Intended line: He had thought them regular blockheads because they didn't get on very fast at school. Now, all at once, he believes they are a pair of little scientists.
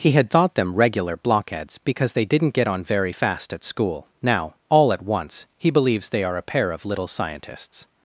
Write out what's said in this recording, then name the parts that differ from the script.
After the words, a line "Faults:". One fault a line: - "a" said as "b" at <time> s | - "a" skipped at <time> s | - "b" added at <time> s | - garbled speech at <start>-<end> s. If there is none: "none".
He had thought them regular blockheads because they didn't get on very fast at school. Now, all at once, he believes they are a pair of little scientists.
Faults:
none